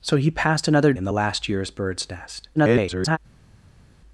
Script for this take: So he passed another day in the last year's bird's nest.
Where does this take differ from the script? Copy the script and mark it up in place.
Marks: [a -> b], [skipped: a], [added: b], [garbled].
So he passed another [skipped: day] in the last year's bird's nest. [garbled]